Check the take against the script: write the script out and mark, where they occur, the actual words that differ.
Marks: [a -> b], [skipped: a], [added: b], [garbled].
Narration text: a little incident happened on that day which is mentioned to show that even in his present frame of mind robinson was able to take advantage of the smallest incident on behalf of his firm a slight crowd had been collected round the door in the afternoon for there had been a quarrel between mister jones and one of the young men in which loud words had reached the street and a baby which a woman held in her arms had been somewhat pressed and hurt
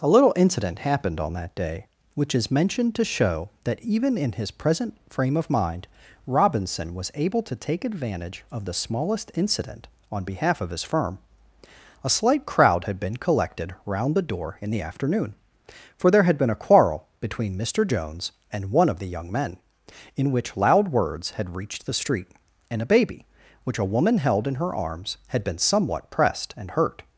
a little incident happened on that day which is mentioned to show that even in his present frame of mind robinson was able to take advantage of the smallest incident on behalf of his firm a slight crowd had been collected round the door in the afternoon for there had been a quarrel between mister jones and one of the young men in which loud words had reached the street and a baby which a woman held in her arms had been somewhat pressed and hurt